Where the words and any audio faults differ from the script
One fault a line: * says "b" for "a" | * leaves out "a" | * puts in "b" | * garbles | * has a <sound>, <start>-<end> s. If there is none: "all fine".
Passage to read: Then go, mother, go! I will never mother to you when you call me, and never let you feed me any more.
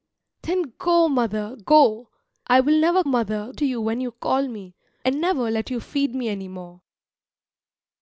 all fine